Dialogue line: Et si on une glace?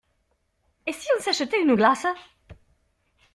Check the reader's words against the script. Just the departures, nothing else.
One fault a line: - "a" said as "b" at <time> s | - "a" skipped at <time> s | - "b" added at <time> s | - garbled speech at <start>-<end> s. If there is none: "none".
- "s'achetait" added at 1.2 s